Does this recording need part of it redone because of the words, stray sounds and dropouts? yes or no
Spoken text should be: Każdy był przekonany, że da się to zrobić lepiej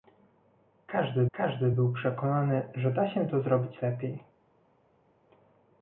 yes